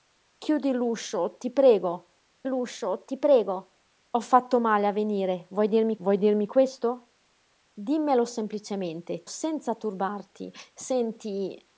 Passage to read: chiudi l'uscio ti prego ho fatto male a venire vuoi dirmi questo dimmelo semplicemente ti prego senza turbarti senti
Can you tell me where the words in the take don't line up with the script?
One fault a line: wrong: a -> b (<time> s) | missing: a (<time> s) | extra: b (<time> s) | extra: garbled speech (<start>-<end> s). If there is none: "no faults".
extra: l'uscio ti prego (2.4 s)
extra: vuoi dirmi (6.0 s)
missing: ti prego (9.3 s)